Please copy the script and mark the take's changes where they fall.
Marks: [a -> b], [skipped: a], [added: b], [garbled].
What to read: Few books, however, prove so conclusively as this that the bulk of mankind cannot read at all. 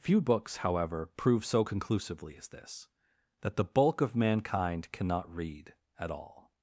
Few books, however, prove so conclusively as this that the bulk of mankind cannot read at all.